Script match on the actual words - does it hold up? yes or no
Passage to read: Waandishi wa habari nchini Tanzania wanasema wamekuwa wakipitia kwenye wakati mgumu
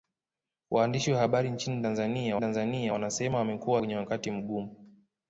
no